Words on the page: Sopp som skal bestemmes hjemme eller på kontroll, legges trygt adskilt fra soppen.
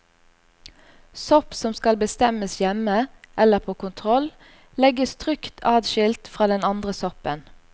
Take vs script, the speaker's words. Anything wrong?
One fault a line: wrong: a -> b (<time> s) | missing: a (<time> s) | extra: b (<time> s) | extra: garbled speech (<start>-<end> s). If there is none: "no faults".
extra: den andre (6.5 s)